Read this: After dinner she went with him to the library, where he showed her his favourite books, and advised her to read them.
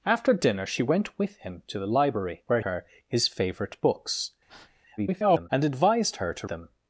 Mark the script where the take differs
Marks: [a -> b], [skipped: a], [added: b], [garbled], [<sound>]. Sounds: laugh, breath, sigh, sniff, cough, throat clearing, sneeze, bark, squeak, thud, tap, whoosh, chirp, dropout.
After dinner she went with him to the library, where [skipped: he showed] her his favourite books, [breath] [garbled] and advised her to [skipped: read] them.